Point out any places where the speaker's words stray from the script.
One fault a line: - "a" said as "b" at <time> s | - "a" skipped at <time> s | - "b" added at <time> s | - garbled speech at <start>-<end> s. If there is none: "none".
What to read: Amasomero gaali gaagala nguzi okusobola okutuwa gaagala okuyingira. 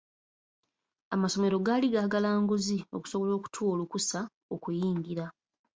- "gaagala" said as "olukusa" at 3.8 s